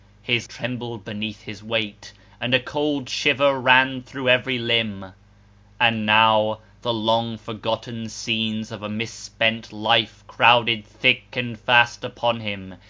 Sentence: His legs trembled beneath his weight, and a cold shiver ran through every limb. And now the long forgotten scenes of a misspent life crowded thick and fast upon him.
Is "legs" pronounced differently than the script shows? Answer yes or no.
yes